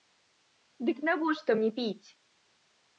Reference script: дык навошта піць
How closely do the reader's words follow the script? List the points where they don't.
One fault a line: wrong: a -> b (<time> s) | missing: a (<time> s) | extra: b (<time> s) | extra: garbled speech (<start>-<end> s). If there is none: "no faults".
extra: мне (1.6 s)